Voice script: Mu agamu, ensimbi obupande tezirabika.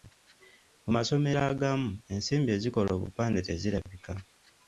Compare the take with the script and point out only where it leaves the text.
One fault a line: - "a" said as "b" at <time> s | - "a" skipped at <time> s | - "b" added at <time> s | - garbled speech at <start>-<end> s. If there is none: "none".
- "masomero" added at 0.9 s
- "ezikola" added at 2.6 s